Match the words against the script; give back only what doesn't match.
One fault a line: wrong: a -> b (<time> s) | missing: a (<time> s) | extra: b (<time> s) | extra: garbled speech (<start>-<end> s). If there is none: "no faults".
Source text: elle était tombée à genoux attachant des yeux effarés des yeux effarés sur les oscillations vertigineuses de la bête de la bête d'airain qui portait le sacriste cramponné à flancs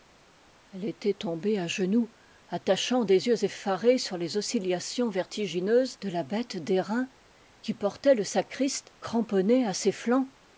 missing: des yeux effarés (4.0 s)
missing: de la bête (6.6 s)
extra: ses (9.7 s)